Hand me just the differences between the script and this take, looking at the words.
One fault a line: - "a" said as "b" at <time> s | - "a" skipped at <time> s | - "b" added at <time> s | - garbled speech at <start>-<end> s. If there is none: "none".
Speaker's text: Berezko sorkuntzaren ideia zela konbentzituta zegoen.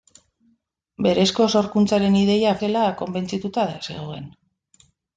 none